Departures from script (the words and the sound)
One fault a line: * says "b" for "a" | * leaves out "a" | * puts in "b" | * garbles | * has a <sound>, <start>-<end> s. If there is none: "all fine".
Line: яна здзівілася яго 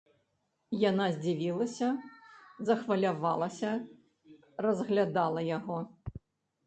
* puts in "захвалявалася разглядала"